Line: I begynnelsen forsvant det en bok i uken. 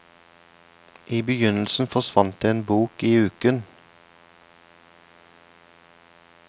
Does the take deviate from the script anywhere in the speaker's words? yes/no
no